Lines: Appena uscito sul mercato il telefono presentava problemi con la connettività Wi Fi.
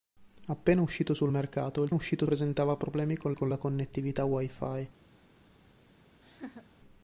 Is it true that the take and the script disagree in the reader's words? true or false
true